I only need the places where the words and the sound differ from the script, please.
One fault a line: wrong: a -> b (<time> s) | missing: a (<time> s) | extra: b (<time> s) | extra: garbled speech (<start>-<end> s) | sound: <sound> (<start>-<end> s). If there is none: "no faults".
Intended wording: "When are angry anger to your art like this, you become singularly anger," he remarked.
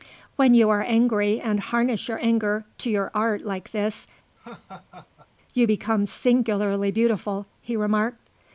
extra: you (0.6 s)
extra: and harness your (1.4 s)
sound: laugh (4.4-5.3 s)
wrong: anger -> beautiful (6.9 s)